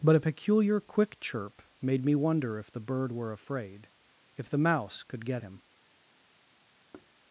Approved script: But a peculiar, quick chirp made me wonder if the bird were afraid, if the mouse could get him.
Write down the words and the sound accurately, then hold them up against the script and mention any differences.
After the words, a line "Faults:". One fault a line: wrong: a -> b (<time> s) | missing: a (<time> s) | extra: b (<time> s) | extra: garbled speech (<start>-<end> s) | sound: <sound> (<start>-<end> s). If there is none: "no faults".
But a peculiar, quick chirp made me wonder if the bird were afraid, if the mouse could get him.
Faults:
sound: thud (6.9-7.1 s)